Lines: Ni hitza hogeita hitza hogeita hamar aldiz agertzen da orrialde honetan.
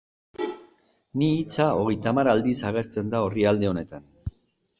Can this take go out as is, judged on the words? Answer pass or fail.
fail